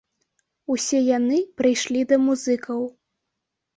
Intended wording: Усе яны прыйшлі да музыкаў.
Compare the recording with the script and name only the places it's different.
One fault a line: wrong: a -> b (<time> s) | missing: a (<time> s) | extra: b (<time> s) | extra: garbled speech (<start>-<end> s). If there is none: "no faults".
no faults